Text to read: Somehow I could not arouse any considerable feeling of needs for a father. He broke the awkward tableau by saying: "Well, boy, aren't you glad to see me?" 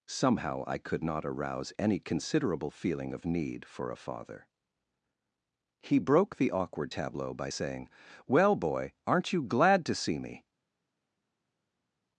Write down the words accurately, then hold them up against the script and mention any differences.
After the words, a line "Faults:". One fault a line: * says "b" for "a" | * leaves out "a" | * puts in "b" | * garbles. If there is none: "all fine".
Somehow I could not arouse any considerable feeling of need for a father. He broke the awkward tableau by saying: "Well, boy, aren't you glad to see me?"
Faults:
* says "need" for "needs"